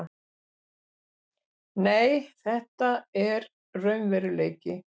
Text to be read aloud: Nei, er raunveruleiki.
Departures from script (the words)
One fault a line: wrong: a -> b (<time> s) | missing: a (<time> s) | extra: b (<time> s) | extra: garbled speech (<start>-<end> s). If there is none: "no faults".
extra: þetta (2.4 s)